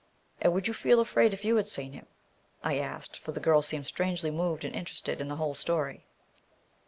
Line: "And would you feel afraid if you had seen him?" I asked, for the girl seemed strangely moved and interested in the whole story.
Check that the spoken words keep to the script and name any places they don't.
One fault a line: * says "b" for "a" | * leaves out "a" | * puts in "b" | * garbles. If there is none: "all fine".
all fine